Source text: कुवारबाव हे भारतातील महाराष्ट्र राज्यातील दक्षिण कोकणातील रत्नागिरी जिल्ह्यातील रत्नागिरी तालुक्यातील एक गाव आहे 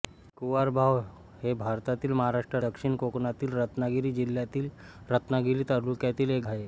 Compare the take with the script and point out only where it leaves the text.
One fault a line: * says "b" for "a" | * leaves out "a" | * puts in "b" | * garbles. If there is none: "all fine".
* leaves out "राज्यातील"
* leaves out "गाव"